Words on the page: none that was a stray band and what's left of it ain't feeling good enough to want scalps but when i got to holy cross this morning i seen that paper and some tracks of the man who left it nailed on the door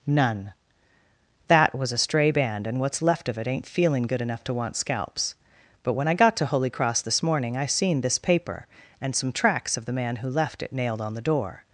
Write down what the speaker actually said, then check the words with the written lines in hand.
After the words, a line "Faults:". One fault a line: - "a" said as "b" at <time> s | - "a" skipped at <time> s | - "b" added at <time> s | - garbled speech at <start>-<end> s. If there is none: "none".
none that was a stray band and what's left of it ain't feeling good enough to want scalps but when i got to holy cross this morning i seen this paper and some tracks of the man who left it nailed on the door
Faults:
- "that" said as "this" at 8.0 s